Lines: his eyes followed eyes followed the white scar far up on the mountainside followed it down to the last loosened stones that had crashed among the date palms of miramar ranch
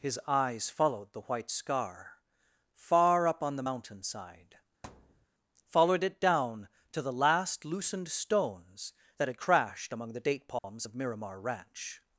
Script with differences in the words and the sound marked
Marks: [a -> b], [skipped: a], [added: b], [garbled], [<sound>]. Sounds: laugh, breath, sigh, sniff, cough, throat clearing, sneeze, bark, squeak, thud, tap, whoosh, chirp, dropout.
his eyes followed [skipped: eyes followed] the white scar far up on the mountainside [thud] followed it down to the last loosened stones that had crashed among the date palms [dropout] of miramar ranch